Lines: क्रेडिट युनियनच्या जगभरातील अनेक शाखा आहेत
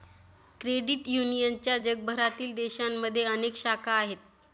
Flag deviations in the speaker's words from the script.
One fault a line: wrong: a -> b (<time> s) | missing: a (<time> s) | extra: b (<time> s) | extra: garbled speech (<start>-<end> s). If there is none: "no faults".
extra: देशांमध्ये (2.5 s)